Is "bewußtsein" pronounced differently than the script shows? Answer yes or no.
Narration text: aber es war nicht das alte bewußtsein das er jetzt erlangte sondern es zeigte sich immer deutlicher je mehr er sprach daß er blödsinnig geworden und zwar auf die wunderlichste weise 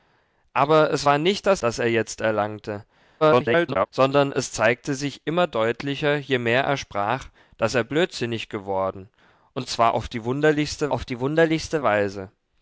yes